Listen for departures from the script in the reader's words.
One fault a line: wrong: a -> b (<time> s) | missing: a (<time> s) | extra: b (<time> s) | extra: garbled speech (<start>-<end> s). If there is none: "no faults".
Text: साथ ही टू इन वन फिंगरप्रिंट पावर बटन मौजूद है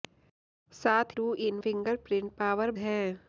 missing: ही (1.1 s)
missing: वन (1.6 s)
missing: बटन मौजूद (2.7 s)